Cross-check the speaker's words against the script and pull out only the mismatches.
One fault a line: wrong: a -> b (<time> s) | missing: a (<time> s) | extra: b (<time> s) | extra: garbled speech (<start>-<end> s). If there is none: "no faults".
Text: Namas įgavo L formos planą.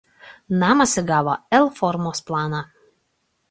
no faults